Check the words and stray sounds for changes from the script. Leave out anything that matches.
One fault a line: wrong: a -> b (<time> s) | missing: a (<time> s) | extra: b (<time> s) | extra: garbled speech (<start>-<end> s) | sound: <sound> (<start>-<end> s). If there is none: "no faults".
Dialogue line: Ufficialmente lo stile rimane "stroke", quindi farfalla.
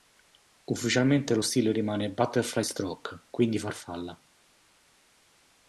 extra: butterfly (2.1 s)